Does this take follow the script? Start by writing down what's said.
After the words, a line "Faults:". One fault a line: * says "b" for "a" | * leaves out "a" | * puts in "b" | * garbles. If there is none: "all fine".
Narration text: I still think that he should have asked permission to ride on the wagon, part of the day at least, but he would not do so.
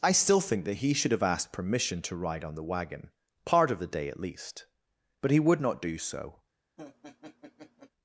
I still think that he should have asked permission to ride on the wagon, part of the day at least, but he would not do so.
Faults:
all fine